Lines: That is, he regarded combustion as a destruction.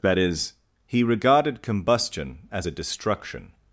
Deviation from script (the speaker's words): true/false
false